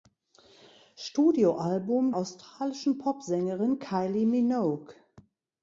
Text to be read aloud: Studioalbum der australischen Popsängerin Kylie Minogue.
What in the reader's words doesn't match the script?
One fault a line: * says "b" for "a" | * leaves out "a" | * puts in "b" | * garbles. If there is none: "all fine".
* leaves out "der"